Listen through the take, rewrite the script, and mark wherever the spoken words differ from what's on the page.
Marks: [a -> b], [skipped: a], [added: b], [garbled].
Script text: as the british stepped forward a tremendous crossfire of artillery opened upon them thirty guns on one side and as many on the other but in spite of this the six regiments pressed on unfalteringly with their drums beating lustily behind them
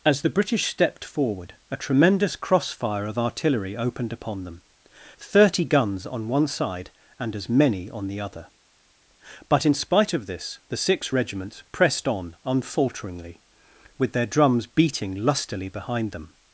as the british stepped forward a tremendous crossfire of artillery opened upon them thirty guns on one side and as many on the other but in spite of this the six regiments pressed on unfalteringly with their drums beating lustily behind them